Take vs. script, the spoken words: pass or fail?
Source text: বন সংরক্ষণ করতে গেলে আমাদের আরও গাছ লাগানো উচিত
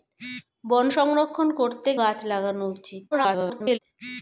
fail